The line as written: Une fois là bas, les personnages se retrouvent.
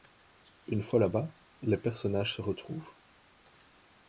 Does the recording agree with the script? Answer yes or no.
yes